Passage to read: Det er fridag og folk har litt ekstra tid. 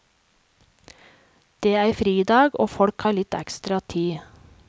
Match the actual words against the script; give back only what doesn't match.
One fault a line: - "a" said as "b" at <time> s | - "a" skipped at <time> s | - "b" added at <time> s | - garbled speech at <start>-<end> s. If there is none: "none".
none